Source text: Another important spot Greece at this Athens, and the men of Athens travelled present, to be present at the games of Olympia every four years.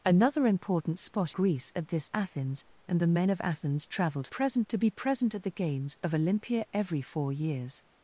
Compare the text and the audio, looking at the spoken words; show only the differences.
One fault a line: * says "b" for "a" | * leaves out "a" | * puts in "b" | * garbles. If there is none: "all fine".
all fine